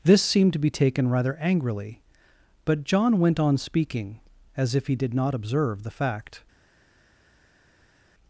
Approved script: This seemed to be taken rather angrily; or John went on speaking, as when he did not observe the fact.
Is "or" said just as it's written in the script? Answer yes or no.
no